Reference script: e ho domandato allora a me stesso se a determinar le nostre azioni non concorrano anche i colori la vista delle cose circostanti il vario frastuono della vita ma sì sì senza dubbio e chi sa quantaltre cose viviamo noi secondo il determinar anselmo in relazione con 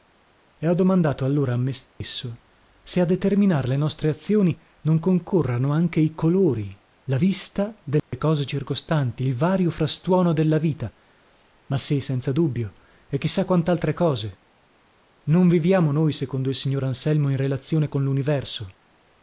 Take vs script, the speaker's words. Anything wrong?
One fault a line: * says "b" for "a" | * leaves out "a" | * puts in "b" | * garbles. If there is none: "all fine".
* leaves out "sì"
* puts in "non"
* says "signor" for "determinar"